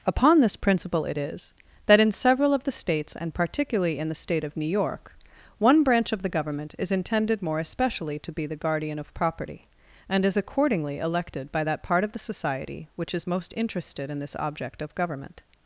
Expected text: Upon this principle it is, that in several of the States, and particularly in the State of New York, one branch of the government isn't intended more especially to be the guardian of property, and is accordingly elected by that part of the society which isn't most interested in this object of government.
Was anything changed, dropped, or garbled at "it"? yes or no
no